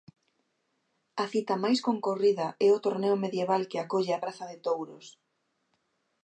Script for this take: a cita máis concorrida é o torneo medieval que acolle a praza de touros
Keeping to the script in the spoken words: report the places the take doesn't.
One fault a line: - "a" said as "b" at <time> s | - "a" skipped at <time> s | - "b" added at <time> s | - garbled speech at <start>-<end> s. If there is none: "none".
none